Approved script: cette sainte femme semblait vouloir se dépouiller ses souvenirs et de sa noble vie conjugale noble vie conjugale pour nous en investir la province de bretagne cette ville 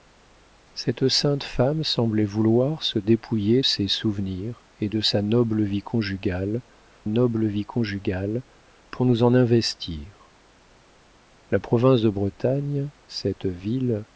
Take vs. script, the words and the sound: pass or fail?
pass